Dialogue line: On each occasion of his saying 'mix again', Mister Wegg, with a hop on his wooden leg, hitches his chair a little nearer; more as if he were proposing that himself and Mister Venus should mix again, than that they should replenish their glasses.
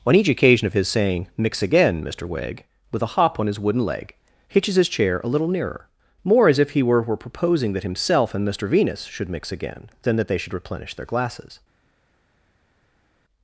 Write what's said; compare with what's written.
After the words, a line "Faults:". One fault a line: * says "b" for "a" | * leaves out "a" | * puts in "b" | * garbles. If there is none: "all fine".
On each occasion of his saying 'mix again', Mister Wegg, with a hop on his wooden leg, hitches his chair a little nearer; more as if he were were proposing that himself and Mister Venus should mix again, than that they should replenish their glasses.
Faults:
* puts in "were"